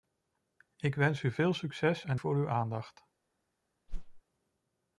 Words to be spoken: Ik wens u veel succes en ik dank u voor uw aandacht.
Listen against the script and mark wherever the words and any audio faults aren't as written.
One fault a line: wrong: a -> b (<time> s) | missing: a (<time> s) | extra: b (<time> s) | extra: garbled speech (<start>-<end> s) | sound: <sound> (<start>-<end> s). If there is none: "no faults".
missing: ik dank u (2.2 s)
sound: whoosh (3.9-4.2 s)